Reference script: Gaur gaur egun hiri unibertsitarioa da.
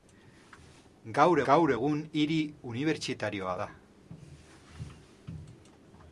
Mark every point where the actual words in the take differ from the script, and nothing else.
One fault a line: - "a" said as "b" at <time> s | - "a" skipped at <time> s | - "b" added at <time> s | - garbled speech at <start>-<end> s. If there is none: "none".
none